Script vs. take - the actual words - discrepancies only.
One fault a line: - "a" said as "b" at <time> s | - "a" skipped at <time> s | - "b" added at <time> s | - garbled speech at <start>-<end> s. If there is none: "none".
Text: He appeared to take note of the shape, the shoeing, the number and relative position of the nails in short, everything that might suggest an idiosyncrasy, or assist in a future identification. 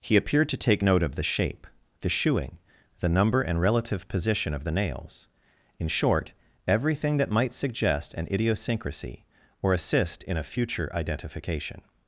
none